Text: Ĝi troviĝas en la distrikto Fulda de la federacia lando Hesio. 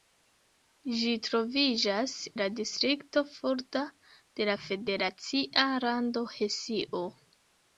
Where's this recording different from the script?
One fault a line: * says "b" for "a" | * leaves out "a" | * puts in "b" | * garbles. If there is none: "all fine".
* leaves out "en"